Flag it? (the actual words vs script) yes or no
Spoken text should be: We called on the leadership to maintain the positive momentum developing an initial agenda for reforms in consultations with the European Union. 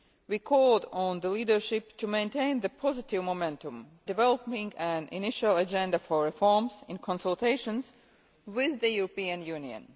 no